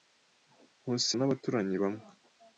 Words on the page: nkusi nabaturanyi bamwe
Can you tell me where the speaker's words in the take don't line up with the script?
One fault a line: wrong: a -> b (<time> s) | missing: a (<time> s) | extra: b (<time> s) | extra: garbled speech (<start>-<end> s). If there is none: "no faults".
no faults